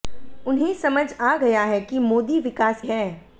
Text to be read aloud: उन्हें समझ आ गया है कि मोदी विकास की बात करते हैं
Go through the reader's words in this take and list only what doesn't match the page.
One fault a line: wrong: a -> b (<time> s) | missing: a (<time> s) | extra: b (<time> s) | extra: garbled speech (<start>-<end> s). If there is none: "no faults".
missing: की बात करते (2.8 s)